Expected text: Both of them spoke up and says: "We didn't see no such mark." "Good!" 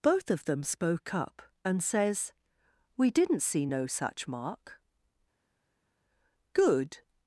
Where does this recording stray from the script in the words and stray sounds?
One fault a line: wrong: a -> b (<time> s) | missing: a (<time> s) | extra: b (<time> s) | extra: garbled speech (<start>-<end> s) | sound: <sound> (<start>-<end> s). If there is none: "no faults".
no faults